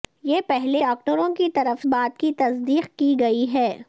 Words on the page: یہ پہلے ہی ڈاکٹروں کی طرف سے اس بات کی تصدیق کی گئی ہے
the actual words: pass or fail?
fail